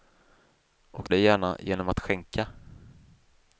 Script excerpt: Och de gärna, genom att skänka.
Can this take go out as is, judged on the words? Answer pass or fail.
pass